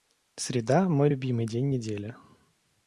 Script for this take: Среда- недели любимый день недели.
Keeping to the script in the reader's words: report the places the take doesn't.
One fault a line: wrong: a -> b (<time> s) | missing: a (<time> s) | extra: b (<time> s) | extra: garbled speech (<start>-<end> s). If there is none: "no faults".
wrong: недели -> мой (0.9 s)